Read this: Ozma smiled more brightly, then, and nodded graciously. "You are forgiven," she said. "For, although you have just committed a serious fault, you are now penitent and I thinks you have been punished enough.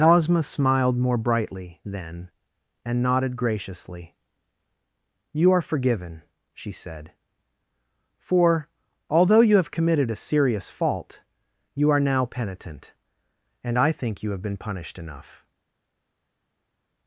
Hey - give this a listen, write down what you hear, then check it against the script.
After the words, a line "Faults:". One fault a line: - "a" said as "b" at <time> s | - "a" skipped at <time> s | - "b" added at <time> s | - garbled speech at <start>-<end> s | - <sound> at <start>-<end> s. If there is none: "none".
Ozma smiled more brightly, then, and nodded graciously. "You are forgiven," she said. "For, although you have committed a serious fault, you are now penitent and I think you have been punished enough.
Faults:
- "just" skipped at 9.7 s
- "thinks" said as "think" at 13.9 s